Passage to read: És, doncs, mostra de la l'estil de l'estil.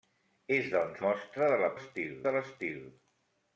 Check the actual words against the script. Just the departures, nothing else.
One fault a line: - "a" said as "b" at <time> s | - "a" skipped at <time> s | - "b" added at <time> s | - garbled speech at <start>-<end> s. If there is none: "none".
none